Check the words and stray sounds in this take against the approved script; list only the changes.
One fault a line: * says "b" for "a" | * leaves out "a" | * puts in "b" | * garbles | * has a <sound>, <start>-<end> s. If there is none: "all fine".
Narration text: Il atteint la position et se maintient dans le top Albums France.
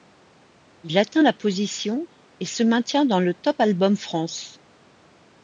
all fine